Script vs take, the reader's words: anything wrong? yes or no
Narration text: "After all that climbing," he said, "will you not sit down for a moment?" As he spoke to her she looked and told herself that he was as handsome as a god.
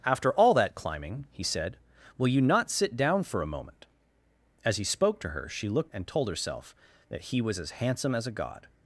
no